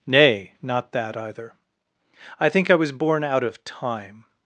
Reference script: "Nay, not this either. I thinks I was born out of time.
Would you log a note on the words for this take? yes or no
yes